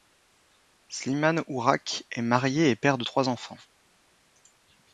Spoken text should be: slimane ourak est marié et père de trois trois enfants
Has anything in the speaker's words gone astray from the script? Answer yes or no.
yes